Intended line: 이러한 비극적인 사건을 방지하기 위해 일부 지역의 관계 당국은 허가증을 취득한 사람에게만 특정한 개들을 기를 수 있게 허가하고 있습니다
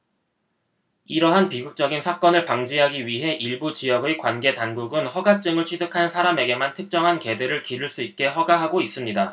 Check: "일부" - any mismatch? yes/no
no